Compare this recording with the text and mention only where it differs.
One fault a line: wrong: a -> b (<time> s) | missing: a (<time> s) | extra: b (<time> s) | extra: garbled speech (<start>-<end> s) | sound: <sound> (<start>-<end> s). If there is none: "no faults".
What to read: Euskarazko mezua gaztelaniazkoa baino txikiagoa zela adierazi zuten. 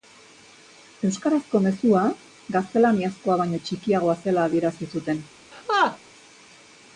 sound: laugh (5.5-6.0 s)